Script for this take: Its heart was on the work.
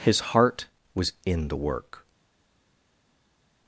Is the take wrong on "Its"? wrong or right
wrong